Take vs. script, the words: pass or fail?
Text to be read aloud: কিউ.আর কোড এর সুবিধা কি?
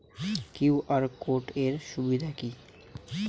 pass